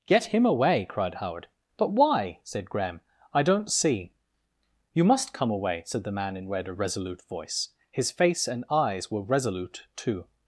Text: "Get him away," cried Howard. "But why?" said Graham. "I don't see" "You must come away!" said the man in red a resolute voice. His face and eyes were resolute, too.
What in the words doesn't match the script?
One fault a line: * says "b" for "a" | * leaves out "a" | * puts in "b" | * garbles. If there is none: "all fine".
all fine